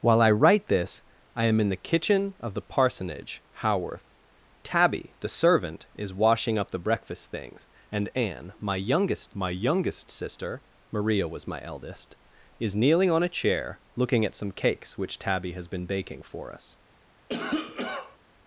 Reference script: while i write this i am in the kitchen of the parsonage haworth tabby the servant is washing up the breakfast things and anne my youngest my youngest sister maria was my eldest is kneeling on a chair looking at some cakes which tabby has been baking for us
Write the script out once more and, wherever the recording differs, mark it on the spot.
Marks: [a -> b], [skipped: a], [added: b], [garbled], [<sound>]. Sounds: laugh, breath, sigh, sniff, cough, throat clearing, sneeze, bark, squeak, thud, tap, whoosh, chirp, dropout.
while i write this i am in the kitchen of the parsonage haworth tabby the servant is washing up the breakfast things and anne my youngest my youngest sister maria was my eldest is kneeling on a chair looking at some cakes which tabby has been baking for us [cough]